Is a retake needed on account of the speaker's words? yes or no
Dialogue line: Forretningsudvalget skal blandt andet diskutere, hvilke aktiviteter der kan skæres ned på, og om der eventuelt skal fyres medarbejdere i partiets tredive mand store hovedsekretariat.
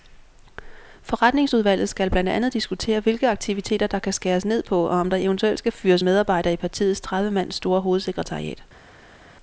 no